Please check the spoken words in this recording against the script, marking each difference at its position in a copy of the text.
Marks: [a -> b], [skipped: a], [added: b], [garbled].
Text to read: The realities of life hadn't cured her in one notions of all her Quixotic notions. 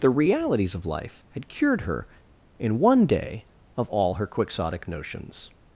The realities of life [hadn't -> had] cured her in one [notions -> day] of all her Quixotic notions.